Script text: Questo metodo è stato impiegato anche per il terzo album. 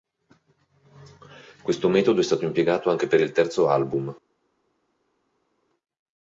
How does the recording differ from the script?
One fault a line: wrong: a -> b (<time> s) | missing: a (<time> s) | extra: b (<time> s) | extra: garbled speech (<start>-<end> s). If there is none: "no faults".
no faults